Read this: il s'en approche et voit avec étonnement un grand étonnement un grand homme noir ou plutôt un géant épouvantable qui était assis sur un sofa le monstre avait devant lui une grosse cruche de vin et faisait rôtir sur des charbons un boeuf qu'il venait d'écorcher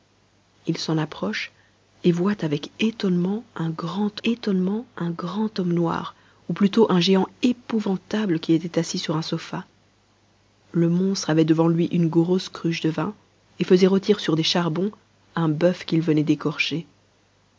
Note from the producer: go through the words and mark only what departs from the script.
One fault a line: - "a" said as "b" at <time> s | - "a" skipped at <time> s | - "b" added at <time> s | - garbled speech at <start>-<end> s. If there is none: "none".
none